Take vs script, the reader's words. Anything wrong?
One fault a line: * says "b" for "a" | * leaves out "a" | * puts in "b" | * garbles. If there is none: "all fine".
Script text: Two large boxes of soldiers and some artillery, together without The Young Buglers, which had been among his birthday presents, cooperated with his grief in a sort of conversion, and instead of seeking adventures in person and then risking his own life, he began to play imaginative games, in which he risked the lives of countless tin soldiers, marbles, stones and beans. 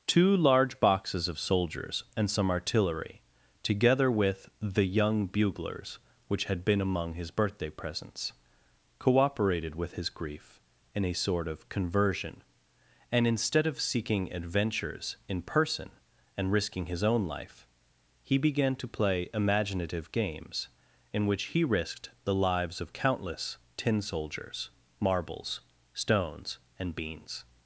* says "with" for "without"
* leaves out "then"